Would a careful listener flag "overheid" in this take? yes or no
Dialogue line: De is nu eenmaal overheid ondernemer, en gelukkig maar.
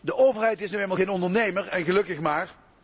yes